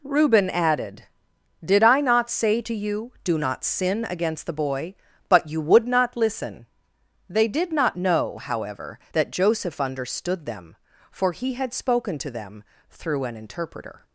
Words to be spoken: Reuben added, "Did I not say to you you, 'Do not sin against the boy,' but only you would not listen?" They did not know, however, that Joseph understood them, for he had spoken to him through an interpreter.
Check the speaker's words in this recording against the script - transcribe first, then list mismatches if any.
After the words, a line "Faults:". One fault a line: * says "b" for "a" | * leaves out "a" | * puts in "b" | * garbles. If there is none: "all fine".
Reuben added, "Did I not say to you, 'Do not sin against the boy,' but you would not listen?" They did not know, however, that Joseph understood them, for he had spoken to them through an interpreter.
Faults:
* leaves out "you"
* leaves out "only"
* says "them" for "him"